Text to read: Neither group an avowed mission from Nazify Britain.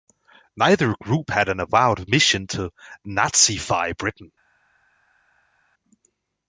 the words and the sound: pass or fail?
fail